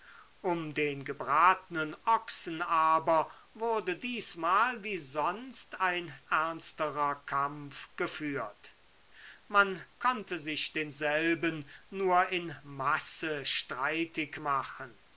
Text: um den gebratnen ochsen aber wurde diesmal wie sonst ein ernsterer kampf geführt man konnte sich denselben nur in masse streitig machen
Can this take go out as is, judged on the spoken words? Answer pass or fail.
pass